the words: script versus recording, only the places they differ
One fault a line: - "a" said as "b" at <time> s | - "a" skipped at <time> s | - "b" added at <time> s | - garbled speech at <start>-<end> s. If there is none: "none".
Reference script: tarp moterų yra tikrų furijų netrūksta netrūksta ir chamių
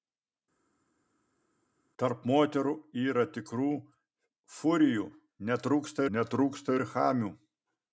none